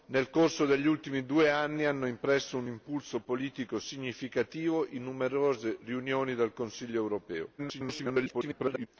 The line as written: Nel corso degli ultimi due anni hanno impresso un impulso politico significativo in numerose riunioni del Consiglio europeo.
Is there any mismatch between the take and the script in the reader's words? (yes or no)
yes